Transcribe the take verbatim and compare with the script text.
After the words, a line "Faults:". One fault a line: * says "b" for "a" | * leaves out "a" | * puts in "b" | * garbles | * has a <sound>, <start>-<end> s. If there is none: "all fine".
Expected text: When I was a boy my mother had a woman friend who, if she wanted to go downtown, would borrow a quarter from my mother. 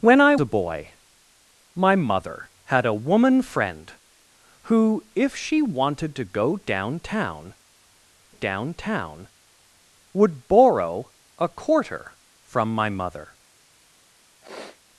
When I a boy my mother had a woman friend who, if she wanted to go downtown downtown, would borrow a quarter from my mother.
Faults:
* leaves out "was"
* puts in "downtown"
* has a sniff, 14.4-14.8 s